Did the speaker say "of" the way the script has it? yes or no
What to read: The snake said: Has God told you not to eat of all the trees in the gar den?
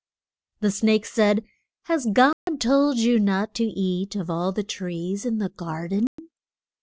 yes